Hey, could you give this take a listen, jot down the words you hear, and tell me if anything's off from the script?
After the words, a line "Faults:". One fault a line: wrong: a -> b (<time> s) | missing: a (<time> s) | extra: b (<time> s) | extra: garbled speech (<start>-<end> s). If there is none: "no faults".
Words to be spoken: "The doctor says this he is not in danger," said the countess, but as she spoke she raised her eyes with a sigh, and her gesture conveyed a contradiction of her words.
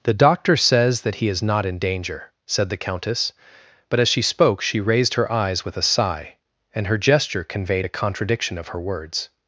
"The doctor says that he is not in danger," said the countess, but as she spoke she raised her eyes with a sigh, and her gesture conveyed a contradiction of her words.
Faults:
wrong: this -> that (1.0 s)